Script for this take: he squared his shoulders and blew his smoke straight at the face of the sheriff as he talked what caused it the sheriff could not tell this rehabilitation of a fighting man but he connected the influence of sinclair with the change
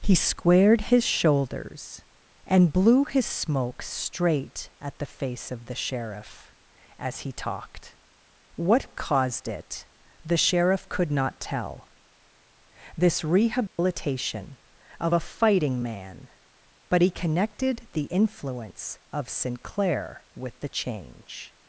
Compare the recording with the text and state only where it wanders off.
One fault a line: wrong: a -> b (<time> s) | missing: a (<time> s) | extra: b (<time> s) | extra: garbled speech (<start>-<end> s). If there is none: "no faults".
no faults